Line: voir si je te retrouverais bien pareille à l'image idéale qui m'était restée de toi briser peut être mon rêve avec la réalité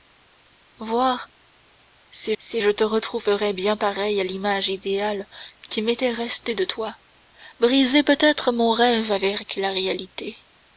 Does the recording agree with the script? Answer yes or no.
no